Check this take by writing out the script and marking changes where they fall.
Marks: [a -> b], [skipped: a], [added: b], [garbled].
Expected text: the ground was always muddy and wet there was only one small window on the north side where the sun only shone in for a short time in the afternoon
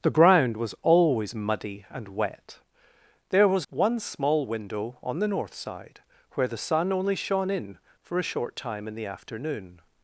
the ground was always muddy and wet there was [skipped: only] one small window on the north side where the sun only shone in for a short time in the afternoon